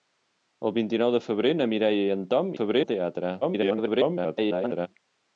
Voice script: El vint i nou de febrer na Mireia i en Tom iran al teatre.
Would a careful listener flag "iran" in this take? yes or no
yes